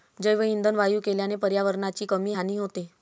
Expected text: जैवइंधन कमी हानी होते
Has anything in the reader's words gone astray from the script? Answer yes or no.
yes